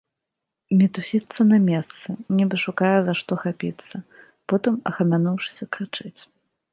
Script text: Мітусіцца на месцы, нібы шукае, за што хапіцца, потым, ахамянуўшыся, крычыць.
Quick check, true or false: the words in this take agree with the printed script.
true